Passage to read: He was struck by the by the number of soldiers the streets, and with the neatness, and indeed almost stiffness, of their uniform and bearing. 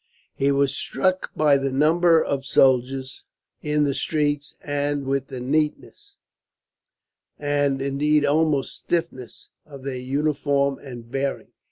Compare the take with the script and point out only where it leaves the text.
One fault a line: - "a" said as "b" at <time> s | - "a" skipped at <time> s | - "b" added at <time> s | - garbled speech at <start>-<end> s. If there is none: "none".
- "by the" skipped at 1.7 s
- "in" added at 3.6 s